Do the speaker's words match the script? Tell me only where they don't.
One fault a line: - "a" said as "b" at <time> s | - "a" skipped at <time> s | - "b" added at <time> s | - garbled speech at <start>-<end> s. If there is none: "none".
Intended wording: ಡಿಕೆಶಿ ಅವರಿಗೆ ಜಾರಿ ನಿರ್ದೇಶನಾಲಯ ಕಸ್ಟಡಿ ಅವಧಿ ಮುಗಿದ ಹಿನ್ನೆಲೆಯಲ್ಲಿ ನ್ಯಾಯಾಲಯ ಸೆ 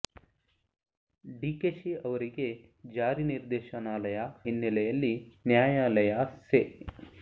- "ಕಸ್ಟಡಿ ಅವಧಿ ಮುಗಿದ" skipped at 4.2 s